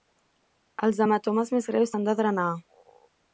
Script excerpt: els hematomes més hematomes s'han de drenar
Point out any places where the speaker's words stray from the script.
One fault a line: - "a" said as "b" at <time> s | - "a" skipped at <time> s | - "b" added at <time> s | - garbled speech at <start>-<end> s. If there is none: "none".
- "hematomes" said as "greus" at 1.7 s